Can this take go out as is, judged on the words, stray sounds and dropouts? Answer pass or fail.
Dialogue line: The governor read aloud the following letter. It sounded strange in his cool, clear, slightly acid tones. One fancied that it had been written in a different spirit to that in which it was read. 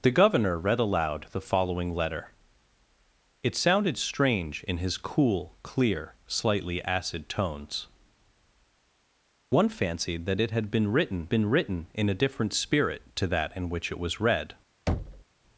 fail